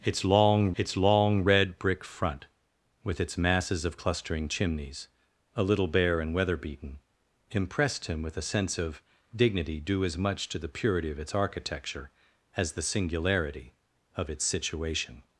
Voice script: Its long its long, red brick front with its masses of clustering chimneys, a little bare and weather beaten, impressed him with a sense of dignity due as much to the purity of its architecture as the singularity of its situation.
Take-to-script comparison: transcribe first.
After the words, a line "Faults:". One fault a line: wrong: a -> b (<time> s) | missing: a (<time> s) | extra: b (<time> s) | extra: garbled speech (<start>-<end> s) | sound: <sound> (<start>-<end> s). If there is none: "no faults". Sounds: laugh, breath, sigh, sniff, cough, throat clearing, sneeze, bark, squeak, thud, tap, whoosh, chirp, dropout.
Its long its long, red brick front with its masses of clustering chimneys, a little bare and weather beaten, impressed him with a sense of dignity due as much to the purity of its architecture as the singularity of its situation.
Faults:
no faults